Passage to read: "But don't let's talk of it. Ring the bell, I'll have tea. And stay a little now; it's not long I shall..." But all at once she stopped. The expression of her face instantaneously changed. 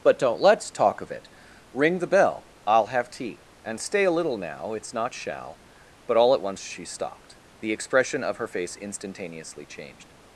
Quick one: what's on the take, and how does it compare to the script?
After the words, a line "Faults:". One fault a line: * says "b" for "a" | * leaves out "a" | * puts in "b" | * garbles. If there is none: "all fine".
"But don't let's talk of it. Ring the bell, I'll have tea. And stay a little now; it's not shall..." But all at once she stopped. The expression of her face instantaneously changed.
Faults:
* leaves out "long I"